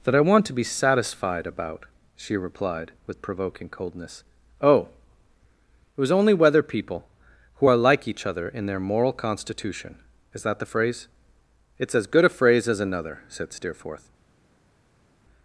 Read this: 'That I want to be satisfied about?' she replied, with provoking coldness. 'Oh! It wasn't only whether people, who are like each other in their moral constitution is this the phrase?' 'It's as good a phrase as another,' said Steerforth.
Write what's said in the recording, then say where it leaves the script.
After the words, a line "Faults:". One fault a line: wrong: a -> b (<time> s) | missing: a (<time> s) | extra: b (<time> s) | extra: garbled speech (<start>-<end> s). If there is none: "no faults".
'That I want to be satisfied about?' she replied, with provoking coldness. 'Oh! It was only whether people, who are like each other in their moral constitution is that the phrase?' 'It's as good a phrase as another,' said Steerforth.
Faults:
wrong: wasn't -> was (6.0 s)
wrong: this -> that (10.4 s)